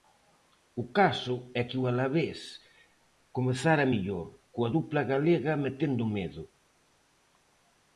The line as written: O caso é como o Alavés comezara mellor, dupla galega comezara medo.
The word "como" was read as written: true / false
false